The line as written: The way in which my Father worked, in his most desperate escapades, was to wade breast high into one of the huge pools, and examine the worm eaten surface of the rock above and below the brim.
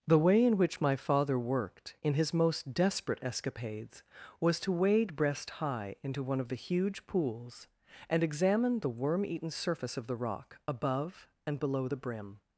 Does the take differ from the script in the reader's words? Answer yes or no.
no